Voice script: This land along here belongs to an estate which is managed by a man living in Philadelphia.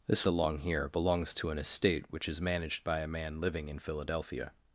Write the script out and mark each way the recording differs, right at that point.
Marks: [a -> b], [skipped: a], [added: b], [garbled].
This [skipped: land] along here belongs to an estate which is managed by a man living in Philadelphia.